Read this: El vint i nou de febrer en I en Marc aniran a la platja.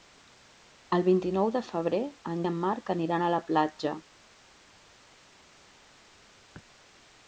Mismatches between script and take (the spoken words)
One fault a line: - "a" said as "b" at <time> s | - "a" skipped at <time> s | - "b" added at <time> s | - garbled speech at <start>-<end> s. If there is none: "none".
none